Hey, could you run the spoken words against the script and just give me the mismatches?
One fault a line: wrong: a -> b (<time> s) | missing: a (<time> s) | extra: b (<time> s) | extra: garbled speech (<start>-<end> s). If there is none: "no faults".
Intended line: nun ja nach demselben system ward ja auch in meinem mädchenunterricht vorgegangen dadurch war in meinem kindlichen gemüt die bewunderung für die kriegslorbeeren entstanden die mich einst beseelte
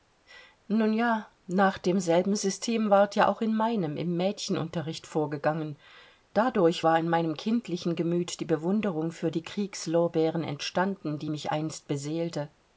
extra: im (4.0 s)